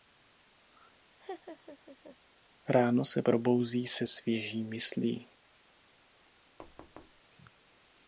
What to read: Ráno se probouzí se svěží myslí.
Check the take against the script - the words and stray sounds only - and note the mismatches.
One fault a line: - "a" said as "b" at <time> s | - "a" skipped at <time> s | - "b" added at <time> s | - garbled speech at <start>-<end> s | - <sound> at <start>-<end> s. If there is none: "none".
- laugh at 1.2-2.2 s
- thud at 6.6-7.2 s